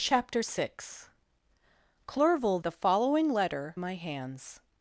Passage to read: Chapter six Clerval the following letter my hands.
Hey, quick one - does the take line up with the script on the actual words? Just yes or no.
yes